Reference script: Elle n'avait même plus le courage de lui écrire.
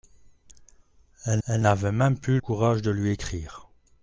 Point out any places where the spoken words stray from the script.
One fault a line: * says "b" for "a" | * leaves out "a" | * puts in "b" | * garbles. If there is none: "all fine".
* puts in "elle"
* leaves out "le"